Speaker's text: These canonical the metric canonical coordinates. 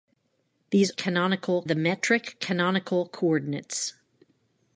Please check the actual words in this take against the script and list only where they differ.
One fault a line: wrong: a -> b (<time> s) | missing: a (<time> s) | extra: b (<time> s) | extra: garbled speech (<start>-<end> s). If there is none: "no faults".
no faults